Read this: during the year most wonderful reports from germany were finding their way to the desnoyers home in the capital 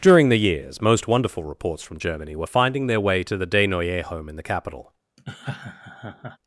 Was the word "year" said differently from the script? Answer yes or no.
yes